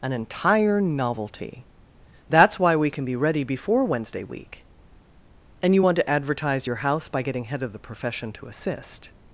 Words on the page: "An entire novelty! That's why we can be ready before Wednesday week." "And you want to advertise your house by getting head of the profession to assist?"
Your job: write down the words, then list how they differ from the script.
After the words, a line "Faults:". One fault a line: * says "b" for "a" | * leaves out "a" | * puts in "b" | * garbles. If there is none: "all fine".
"An entire novelty! That's why we can be ready before Wednesday week." "And you want to advertise your house by getting head of the profession to assist?"
Faults:
all fine